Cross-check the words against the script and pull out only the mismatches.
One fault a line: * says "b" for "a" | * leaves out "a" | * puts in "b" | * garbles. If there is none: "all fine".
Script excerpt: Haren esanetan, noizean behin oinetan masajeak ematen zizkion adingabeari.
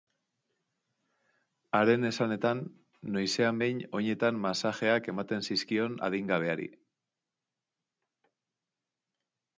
all fine